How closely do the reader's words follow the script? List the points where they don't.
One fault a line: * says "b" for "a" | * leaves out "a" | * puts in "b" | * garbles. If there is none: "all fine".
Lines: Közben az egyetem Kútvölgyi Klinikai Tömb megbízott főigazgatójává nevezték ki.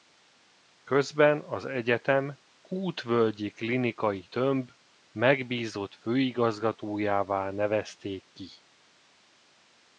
all fine